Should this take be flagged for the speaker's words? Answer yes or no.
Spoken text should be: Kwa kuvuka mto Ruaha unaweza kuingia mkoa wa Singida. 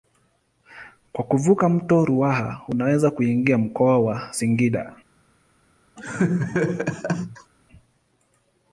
no